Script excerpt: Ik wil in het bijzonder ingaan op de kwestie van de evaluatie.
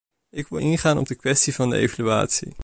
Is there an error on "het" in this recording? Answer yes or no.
yes